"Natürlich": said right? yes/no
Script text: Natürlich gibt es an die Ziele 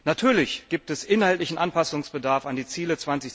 yes